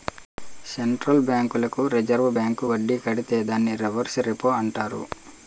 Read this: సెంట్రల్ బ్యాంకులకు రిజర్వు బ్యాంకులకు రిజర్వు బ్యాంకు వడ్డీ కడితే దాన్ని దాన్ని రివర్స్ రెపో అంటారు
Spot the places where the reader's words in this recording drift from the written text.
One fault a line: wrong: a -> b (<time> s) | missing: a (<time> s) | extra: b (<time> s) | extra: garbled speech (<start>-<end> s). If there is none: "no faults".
missing: బ్యాంకులకు రిజర్వు (2.3 s)
missing: దాన్ని (3.7 s)